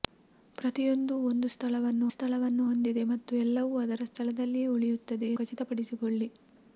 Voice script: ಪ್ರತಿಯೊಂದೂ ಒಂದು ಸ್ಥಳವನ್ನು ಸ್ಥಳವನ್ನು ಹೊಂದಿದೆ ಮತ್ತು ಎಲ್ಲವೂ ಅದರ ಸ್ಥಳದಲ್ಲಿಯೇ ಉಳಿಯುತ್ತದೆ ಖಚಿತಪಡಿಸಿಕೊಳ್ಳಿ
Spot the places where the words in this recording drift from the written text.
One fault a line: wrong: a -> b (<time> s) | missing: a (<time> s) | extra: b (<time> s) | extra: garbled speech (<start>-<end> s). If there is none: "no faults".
no faults